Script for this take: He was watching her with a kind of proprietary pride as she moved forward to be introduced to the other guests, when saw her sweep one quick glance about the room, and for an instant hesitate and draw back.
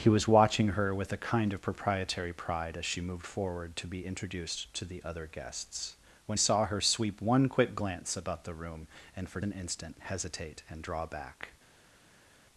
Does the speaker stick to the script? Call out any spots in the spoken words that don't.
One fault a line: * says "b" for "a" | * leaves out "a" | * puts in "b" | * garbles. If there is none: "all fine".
all fine